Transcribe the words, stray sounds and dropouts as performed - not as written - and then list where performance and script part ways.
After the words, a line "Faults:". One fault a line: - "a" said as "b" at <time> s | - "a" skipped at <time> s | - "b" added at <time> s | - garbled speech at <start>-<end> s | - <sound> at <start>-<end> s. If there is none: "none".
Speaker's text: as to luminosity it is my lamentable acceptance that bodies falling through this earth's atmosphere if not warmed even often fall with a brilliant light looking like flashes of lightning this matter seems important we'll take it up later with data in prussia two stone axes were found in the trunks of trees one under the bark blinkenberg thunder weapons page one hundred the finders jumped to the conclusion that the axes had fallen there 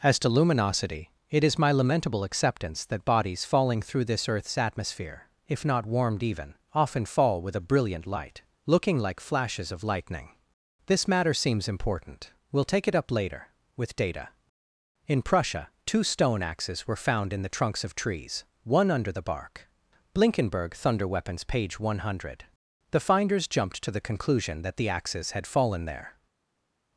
as to luminosity it is my lamentable acceptance that bodies falling through this earth's atmosphere if not warmed even often fall with a brilliant light looking like flashes of lightning this matter seems important we'll take it up later with data in prussia two stone axes were found in the trunks of trees one under the bark blinkenberg thunder weapons page one hundred the finders jumped to the conclusion that the axes had fallen there
Faults:
none